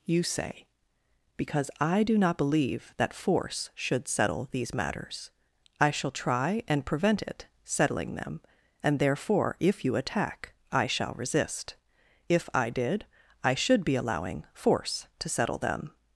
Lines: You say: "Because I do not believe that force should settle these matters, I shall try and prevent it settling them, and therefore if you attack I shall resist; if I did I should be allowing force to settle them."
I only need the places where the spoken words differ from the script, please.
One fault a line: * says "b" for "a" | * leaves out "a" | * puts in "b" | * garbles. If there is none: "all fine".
all fine